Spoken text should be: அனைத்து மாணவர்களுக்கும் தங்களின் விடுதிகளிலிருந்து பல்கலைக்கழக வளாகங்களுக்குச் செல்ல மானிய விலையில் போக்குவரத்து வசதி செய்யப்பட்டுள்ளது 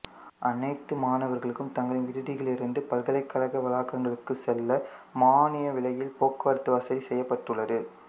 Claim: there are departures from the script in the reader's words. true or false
false